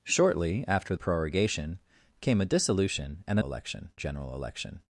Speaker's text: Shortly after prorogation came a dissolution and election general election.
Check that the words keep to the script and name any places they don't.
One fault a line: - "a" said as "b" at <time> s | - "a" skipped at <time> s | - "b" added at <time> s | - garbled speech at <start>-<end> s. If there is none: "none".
none